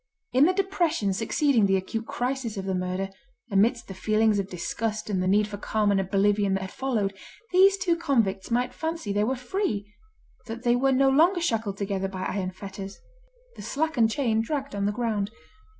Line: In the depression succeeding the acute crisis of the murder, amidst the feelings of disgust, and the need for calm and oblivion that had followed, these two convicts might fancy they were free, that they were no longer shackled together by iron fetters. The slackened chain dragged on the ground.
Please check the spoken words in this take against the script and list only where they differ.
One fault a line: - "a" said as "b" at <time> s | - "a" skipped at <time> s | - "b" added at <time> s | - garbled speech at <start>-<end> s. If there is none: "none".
none